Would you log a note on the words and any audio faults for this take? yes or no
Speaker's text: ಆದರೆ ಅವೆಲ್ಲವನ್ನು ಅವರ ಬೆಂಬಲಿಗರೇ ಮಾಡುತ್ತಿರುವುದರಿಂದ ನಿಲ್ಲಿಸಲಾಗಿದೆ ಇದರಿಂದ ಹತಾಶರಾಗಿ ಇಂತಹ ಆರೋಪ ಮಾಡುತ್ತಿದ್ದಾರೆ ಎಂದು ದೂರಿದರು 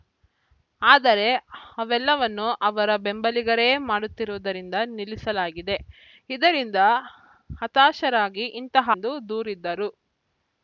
yes